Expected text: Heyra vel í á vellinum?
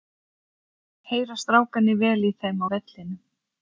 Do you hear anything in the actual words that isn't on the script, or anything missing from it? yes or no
yes